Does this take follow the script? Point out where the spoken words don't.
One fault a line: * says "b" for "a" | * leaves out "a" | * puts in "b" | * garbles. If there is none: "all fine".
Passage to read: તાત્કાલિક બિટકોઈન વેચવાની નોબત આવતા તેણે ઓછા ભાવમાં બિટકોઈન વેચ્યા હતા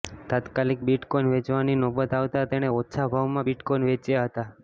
all fine